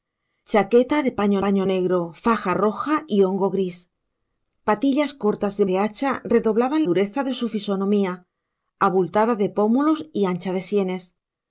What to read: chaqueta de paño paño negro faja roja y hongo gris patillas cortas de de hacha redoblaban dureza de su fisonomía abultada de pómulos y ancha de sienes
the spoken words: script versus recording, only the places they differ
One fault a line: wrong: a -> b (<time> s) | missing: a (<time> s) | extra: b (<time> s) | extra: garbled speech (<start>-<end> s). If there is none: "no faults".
no faults